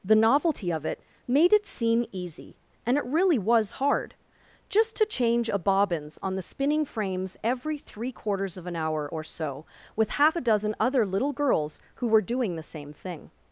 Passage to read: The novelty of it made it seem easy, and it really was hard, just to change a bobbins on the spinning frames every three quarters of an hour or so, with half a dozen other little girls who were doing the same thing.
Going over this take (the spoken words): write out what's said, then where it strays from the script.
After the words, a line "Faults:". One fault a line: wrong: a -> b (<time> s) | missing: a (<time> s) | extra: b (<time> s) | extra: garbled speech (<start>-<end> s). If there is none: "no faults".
The novelty of it made it seem easy, and it really was hard, just to change a bobbins on the spinning frames every three quarters of an hour or so, with half a dozen other little girls who were doing the same thing.
Faults:
no faults